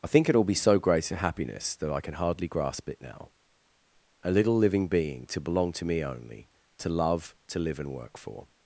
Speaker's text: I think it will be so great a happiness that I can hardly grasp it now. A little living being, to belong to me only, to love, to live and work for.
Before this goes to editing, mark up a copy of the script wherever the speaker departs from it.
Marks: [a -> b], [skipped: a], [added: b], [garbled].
I think it will be so great a happiness that I can hardly grasp it now. A little living being, to belong to me only, to love, to live and work for.